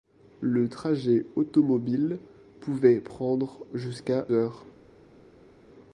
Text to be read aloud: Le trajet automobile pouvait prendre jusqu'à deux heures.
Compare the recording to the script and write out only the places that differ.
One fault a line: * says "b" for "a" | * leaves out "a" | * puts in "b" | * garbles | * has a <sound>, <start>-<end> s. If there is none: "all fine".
* leaves out "deux"